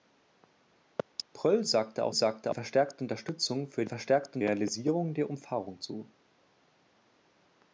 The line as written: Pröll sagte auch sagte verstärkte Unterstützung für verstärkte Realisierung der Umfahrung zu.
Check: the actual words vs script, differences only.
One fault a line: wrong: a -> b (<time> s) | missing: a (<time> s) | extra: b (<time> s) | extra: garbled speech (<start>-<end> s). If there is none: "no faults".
no faults